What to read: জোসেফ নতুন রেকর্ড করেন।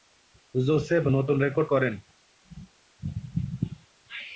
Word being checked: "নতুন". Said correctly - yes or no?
yes